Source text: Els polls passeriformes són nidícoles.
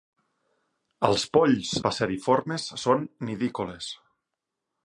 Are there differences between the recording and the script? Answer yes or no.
no